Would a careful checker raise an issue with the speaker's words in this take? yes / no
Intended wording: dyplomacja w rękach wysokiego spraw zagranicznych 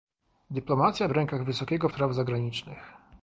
no